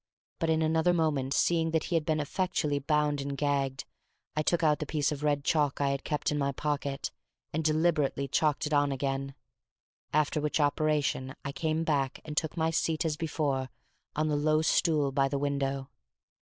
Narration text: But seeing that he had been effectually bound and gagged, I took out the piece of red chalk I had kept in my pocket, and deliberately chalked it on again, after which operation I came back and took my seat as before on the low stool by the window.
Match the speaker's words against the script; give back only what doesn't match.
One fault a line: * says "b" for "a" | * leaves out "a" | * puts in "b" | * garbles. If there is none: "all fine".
* puts in "in another moment"